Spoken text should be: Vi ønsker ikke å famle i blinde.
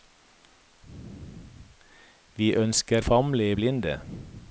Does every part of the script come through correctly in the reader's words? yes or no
no